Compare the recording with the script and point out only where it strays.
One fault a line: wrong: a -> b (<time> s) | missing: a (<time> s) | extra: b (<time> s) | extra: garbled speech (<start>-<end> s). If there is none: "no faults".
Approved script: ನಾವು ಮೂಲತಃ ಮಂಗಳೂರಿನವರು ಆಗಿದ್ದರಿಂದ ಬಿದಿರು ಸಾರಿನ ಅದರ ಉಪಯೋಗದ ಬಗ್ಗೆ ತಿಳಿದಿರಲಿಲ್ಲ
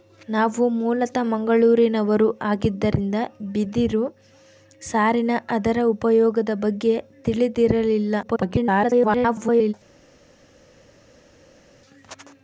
extra: garbled speech (8.2-9.7 s)